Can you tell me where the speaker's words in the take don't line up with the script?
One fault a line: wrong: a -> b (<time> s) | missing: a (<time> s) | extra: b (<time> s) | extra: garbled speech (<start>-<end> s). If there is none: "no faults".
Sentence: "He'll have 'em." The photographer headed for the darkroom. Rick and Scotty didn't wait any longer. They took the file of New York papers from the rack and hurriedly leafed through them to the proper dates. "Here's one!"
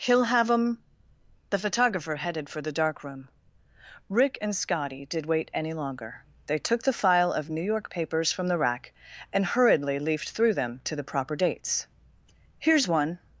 wrong: didn't -> did (5.0 s)